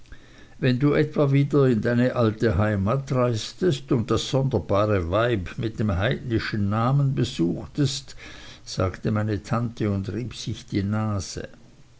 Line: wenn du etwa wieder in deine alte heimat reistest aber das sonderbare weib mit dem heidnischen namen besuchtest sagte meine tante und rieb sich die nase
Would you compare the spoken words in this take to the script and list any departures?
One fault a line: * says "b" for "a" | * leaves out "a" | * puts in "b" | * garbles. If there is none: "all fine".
* says "und" for "aber"